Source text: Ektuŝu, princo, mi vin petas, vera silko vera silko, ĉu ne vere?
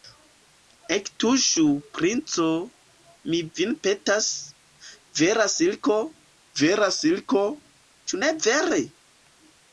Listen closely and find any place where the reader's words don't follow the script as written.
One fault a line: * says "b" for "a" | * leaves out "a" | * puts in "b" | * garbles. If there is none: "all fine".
all fine